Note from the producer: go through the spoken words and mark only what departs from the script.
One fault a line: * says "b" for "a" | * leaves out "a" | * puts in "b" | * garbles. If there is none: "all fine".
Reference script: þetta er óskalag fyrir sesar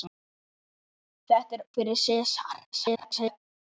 * leaves out "óskalag"
* garbles